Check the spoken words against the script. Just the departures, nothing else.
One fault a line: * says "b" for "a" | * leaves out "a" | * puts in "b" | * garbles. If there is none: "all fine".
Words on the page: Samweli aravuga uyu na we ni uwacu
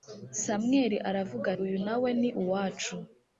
all fine